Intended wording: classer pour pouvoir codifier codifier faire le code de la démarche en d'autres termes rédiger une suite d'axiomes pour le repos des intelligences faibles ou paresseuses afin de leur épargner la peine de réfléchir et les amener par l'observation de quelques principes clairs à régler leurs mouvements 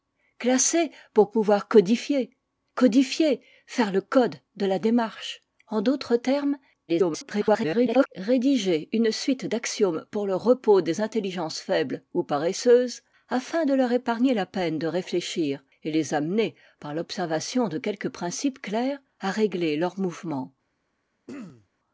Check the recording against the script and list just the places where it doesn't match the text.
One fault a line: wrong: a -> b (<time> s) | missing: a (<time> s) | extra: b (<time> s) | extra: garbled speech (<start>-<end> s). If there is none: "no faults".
extra: garbled speech (6.9-8.1 s)